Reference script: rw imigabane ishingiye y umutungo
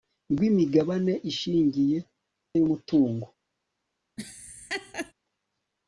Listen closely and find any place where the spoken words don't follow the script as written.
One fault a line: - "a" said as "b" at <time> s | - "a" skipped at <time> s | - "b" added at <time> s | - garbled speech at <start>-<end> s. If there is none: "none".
none